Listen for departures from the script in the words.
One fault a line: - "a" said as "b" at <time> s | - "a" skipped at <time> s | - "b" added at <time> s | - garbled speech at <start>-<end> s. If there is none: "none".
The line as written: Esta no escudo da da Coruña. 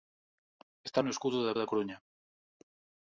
none